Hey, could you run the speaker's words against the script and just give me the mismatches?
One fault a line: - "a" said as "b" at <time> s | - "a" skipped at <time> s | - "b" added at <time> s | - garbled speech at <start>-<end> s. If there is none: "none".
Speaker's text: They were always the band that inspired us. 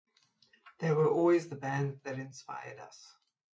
none